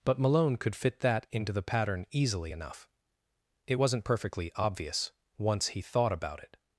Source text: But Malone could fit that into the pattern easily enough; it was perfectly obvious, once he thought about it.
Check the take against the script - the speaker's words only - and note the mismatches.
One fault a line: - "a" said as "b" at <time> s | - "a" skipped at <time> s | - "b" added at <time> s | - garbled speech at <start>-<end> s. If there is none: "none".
- "was" said as "wasn't" at 3.7 s